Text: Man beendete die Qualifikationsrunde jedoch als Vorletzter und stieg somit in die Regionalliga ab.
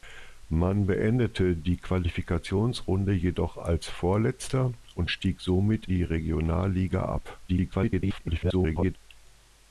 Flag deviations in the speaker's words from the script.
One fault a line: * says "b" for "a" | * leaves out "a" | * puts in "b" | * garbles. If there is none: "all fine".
* leaves out "in"
* garbles